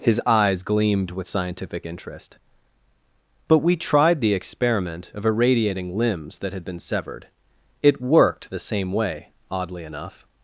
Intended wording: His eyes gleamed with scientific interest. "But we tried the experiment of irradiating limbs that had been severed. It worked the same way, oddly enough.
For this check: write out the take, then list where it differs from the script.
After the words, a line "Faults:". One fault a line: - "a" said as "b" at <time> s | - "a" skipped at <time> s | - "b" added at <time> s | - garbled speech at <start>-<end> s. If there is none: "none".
His eyes gleamed with scientific interest. "But we tried the experiment of irradiating limbs that had been severed. It worked the same way, oddly enough.
Faults:
none